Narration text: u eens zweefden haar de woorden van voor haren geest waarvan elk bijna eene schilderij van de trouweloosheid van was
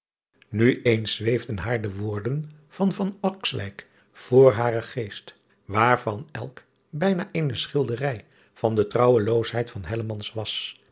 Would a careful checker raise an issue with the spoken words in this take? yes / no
no